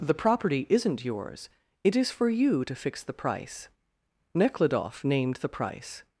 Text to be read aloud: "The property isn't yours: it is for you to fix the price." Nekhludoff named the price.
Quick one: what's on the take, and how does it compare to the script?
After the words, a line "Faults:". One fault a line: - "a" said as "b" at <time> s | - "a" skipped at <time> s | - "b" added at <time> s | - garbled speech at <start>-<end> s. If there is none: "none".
"The property isn't yours: it is for you to fix the price." Nekhludoff named the price.
Faults:
none